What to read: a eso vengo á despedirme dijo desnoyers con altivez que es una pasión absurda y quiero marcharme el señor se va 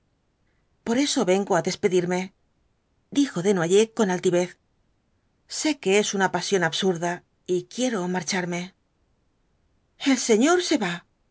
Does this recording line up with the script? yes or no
no